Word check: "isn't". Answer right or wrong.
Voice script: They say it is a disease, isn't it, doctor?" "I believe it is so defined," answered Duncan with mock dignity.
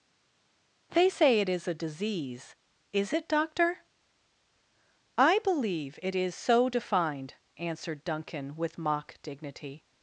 wrong